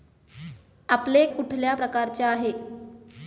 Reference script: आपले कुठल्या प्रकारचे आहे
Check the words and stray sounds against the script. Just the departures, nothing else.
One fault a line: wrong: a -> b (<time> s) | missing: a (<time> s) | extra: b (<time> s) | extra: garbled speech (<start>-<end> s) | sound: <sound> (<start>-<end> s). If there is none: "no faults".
no faults